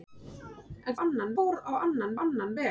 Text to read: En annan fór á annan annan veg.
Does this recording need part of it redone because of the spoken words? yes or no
no